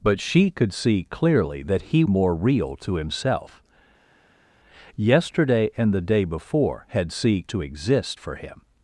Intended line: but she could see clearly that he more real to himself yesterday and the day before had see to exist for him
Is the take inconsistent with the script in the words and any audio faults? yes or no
no